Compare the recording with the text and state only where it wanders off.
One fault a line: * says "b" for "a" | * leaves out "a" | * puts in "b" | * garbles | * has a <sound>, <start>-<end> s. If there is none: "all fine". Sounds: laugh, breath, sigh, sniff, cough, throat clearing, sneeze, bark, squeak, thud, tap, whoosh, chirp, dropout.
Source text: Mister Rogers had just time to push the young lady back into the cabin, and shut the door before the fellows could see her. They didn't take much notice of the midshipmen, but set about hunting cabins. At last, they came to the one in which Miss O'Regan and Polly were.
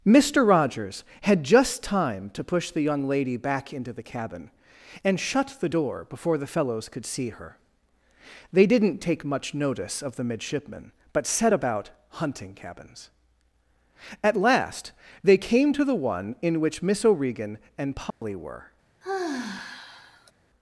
* has a dropout, 18.1-18.2 s
* has a sigh, 19.0-20.3 s